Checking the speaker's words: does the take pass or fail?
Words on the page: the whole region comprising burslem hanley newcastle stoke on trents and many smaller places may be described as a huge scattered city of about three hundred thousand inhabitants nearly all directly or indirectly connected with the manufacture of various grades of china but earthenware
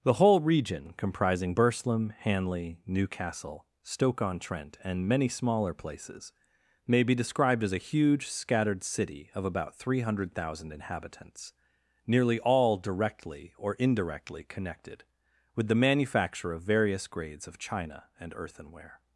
fail